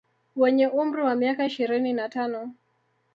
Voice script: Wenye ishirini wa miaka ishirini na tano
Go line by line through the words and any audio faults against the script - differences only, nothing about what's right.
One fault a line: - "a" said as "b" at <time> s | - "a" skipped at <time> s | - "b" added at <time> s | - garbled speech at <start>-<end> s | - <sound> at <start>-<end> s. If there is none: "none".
- "ishirini" said as "umri" at 0.7 s